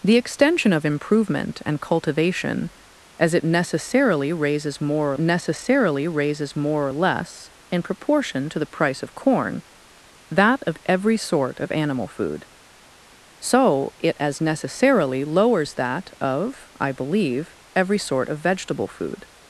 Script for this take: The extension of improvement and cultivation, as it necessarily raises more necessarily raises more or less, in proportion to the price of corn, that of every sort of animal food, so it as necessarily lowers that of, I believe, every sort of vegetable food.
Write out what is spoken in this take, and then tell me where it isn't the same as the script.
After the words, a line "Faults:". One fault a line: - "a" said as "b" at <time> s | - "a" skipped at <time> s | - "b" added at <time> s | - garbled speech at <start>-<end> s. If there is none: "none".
The extension of improvement and cultivation, as it necessarily raises more necessarily raises more or less, in proportion to the price of corn, that of every sort of animal food, so it as necessarily lowers that of, I believe, every sort of vegetable food.
Faults:
none